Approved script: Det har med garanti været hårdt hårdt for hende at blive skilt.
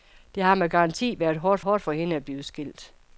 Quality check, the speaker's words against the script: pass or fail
pass